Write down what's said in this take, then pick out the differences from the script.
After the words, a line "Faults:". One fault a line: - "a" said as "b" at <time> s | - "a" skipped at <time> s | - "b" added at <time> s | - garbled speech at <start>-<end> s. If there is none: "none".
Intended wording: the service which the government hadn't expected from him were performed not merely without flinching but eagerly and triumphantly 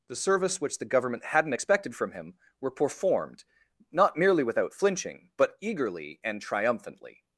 the service which the government hadn't expected from him were performed not merely without flinching but eagerly and triumphantly
Faults:
none